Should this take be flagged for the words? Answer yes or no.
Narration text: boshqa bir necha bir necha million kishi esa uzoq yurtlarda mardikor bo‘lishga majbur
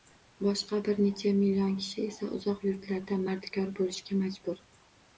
yes